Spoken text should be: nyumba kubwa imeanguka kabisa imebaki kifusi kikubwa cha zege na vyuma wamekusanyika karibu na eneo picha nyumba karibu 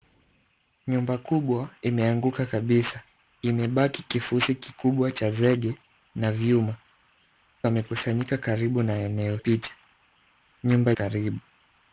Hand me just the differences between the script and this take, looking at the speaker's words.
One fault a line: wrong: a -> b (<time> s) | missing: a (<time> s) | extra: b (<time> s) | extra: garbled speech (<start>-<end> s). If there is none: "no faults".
no faults